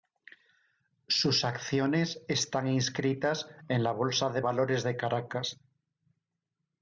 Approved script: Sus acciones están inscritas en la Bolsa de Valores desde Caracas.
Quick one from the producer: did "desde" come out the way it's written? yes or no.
no